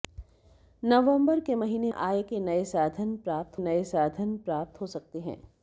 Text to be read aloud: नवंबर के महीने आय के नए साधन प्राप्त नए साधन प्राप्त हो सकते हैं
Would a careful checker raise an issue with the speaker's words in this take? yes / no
no